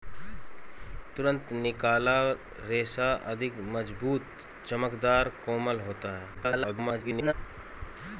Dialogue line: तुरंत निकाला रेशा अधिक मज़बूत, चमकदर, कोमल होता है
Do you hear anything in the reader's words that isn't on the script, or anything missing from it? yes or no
yes